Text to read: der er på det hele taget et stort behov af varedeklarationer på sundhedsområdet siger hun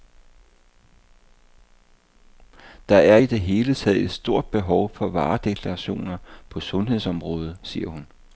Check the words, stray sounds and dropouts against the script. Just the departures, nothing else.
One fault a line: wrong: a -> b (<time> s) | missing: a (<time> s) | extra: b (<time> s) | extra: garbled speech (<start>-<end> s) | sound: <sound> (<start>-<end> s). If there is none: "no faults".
wrong: på -> i (3.2 s)
wrong: af -> for (4.9 s)